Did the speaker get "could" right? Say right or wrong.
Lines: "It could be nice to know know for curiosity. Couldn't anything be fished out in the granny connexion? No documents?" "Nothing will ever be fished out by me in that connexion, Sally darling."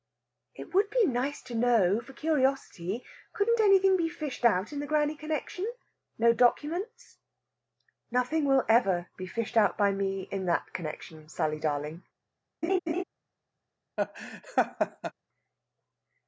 wrong